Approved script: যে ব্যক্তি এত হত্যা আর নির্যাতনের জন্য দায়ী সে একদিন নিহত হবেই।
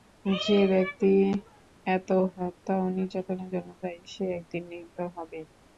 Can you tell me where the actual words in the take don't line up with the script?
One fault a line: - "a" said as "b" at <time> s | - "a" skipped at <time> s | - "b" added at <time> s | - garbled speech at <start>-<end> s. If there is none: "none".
- "আর" said as "ও" at 2.8 s